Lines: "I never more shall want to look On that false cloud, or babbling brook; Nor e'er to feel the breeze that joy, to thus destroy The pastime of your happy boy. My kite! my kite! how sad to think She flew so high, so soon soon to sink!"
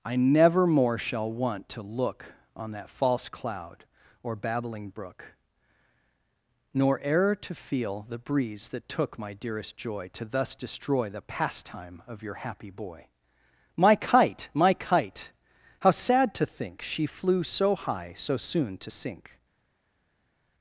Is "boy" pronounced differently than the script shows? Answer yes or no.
no